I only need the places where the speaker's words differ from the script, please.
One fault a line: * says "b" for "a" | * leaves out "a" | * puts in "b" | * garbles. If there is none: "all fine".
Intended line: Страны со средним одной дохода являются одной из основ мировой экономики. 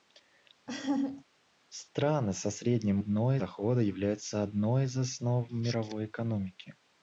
all fine